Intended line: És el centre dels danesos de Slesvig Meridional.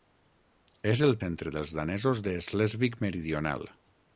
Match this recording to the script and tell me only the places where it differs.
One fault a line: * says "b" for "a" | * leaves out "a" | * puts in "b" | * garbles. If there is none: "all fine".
all fine